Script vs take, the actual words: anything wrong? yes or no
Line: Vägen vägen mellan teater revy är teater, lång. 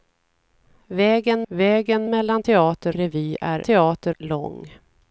no